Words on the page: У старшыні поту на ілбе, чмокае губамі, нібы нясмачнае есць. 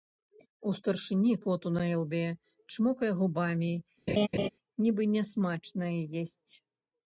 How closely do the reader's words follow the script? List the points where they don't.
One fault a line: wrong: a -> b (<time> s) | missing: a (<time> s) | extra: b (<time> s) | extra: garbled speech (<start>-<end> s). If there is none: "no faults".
no faults